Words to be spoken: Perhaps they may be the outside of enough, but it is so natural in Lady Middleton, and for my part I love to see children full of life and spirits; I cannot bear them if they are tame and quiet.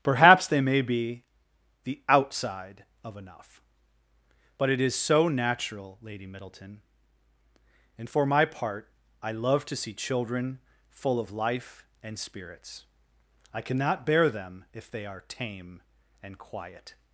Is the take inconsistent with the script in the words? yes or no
yes